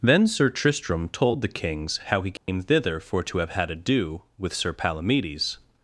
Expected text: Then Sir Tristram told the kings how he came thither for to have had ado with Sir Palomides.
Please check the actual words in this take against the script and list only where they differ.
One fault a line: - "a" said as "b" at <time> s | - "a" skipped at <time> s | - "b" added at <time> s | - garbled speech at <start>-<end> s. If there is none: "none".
none